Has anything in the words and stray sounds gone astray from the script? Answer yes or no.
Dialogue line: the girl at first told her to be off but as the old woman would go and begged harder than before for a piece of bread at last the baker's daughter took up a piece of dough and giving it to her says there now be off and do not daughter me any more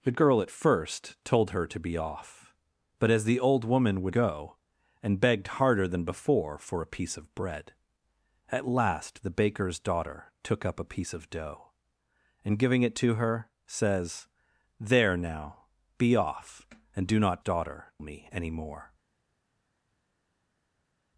no